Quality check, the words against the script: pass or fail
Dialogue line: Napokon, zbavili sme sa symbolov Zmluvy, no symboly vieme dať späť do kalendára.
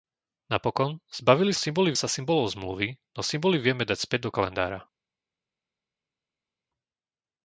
fail